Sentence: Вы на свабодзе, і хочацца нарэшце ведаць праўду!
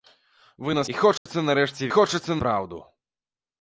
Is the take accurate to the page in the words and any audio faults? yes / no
no